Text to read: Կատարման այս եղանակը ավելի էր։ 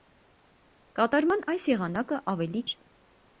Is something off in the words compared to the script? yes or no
no